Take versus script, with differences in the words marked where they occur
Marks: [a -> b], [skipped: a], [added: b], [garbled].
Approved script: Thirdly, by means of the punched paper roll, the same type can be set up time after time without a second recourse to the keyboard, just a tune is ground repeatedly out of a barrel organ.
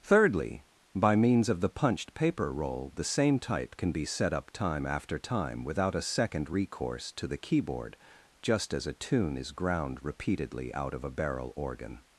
Thirdly, by means of the punched paper roll, the same type can be set up time after time without a second recourse to the keyboard, just [added: as] a tune is ground repeatedly out of a barrel organ.